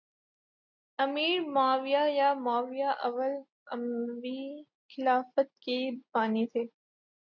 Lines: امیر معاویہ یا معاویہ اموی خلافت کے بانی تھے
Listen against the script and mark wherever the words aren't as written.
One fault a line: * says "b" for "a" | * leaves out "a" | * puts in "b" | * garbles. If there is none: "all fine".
* puts in "اول"